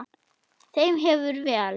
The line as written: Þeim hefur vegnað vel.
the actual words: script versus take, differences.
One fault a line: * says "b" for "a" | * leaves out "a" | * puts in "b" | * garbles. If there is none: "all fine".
* leaves out "vegnað"